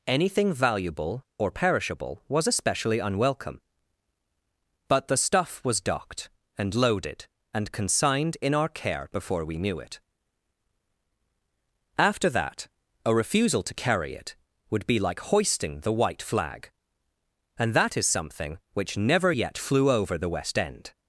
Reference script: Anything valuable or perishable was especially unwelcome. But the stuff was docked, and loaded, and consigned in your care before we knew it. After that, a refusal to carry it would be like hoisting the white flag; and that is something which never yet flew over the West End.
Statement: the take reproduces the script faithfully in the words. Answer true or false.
false